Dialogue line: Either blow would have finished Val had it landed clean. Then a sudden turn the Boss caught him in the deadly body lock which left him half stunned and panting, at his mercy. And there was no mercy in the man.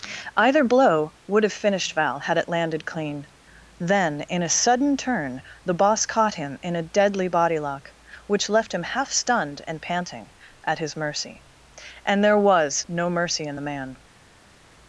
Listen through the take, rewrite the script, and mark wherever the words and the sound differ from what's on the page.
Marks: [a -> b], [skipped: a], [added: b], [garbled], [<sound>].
Either blow would have finished Val had it landed clean. Then [added: in] a sudden turn the Boss caught him in [the -> a] deadly body lock which left him half stunned and panting, at his mercy. And there was no mercy in the man.